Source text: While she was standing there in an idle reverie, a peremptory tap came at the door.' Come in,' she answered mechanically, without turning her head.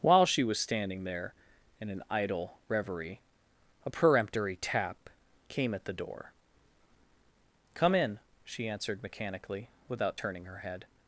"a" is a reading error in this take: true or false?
false